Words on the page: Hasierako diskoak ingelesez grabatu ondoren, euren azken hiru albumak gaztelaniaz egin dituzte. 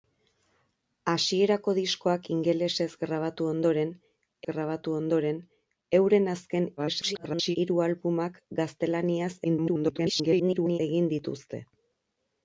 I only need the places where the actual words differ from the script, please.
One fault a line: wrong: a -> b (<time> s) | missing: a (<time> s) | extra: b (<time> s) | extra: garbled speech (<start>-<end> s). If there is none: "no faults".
extra: grabatu ondoren (4.5 s)
extra: garbled speech (6.8-7.6 s)
extra: garbled speech (9.4-10.8 s)